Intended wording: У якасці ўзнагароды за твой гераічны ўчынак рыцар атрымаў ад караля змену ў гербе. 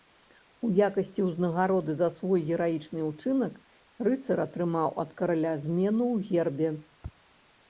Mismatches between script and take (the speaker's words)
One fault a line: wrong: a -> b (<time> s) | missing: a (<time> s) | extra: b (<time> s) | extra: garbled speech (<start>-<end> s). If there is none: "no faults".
wrong: твой -> свой (2.2 s)